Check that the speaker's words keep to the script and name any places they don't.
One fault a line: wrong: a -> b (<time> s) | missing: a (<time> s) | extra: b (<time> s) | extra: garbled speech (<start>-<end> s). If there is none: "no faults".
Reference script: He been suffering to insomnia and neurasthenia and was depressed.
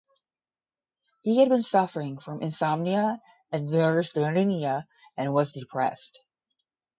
extra: had (1.4 s)
wrong: to -> from (2.2 s)